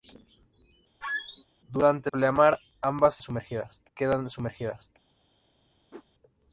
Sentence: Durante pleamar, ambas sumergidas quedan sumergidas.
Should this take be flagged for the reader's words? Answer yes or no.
no